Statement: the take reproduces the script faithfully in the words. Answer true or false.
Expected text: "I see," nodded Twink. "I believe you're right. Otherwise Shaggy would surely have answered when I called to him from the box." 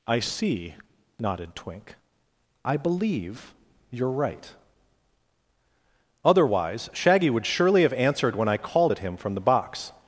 false